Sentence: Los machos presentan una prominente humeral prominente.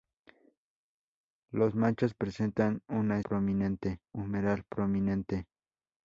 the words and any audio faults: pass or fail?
pass